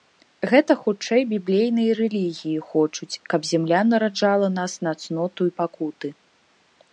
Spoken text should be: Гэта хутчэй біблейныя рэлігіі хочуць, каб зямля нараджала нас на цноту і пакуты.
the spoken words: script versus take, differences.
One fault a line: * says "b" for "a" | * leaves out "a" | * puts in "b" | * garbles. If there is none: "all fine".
all fine